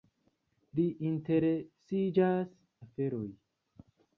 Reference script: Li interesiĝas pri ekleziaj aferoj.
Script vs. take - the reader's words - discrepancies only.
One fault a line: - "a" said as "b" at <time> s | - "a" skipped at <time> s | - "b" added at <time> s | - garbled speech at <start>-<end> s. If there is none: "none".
- "pri ekleziaj" skipped at 2.5 s